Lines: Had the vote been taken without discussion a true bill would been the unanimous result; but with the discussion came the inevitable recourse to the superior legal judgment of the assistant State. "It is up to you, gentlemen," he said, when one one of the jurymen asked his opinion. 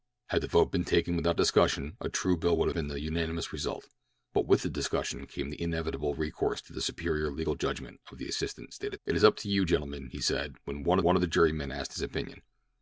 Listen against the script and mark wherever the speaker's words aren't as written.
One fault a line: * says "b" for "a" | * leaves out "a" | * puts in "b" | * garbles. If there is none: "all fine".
all fine